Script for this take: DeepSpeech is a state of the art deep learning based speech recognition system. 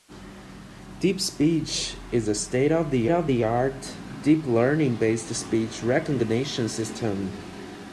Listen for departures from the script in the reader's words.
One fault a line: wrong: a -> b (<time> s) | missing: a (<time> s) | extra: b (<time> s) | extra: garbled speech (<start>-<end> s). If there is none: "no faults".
extra: of the (3.1 s)